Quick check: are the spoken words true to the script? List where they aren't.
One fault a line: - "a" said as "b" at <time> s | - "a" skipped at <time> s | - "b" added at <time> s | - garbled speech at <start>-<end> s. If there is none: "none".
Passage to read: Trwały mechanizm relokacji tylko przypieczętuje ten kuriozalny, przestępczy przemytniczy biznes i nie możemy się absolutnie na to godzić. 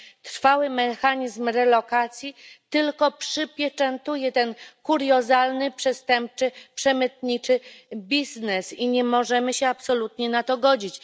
none